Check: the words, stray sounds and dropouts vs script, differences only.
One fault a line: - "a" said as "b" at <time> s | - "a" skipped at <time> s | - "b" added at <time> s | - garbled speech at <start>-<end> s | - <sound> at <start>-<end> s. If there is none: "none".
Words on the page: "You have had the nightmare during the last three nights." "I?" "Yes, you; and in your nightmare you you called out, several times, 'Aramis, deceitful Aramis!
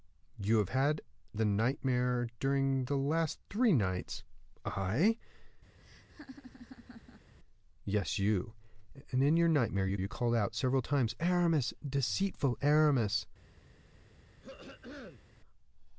- laugh at 5.8-7.3 s
- throat clearing at 14.4-15.2 s